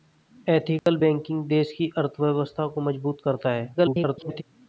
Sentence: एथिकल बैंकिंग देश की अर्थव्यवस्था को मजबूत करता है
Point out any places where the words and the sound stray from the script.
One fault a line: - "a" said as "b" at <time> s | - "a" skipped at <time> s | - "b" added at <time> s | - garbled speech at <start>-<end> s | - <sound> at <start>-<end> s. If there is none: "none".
- dropout at 0.8-0.9 s
- garbled speech at 3.7-4.4 s